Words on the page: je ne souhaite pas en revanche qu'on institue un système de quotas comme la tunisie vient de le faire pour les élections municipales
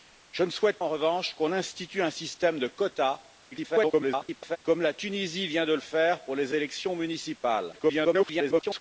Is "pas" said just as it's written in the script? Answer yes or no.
no